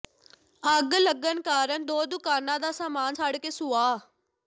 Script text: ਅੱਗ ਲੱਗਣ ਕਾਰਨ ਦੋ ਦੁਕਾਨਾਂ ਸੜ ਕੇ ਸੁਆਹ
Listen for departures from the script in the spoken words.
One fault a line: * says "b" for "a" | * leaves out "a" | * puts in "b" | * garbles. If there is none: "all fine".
* puts in "ਦਾ ਸਾਮਾਨ"